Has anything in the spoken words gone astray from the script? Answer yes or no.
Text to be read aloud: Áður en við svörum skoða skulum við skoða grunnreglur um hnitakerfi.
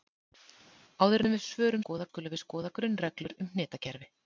no